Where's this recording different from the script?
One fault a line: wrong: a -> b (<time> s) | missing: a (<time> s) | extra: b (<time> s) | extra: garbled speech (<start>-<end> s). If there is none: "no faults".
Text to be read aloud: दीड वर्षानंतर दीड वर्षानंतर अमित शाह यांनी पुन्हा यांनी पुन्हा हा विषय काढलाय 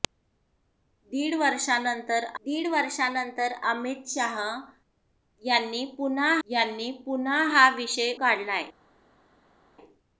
no faults